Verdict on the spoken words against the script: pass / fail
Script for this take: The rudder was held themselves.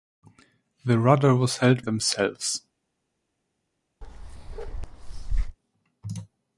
pass